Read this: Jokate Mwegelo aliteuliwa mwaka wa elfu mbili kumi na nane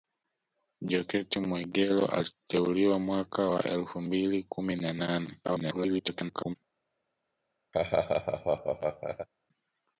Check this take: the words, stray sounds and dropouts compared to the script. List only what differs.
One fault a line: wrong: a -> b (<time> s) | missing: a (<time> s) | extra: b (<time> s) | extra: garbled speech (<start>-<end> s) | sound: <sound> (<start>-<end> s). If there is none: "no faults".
extra: garbled speech (5.4-6.6 s)
sound: laugh (7.7-9.3 s)